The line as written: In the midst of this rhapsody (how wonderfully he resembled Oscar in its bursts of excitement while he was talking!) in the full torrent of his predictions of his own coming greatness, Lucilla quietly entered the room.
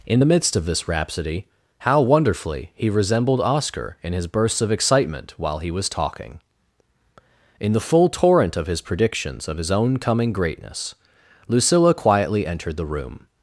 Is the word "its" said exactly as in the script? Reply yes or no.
no